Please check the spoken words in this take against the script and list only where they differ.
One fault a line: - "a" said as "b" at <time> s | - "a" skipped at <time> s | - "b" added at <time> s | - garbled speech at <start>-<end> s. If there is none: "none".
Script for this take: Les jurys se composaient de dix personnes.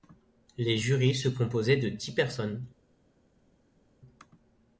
none